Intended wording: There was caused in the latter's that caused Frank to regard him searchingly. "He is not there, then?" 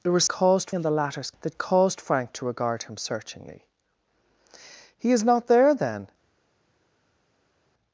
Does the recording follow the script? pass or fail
pass